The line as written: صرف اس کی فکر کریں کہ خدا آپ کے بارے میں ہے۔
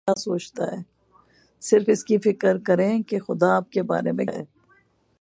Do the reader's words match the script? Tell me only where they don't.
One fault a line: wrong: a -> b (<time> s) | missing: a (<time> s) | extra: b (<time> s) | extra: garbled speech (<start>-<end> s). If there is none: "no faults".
no faults